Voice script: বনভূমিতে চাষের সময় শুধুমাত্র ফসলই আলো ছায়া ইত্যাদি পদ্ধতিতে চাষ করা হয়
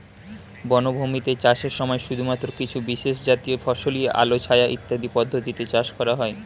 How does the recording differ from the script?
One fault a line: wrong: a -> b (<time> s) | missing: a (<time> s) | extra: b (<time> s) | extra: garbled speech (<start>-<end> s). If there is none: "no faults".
extra: কিছু বিশেষজাতীয় (2.6 s)